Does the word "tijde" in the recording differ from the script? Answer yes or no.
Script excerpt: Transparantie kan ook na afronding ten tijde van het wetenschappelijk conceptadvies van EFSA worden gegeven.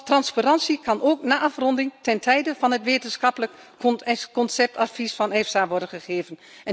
no